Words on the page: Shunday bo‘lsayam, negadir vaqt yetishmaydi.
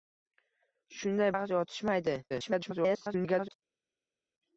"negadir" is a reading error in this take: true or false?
true